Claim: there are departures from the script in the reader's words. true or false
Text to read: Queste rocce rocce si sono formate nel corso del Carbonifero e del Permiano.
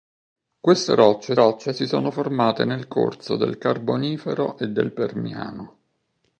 false